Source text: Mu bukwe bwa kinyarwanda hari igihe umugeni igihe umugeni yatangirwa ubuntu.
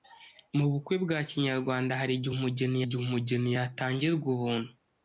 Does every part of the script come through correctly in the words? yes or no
yes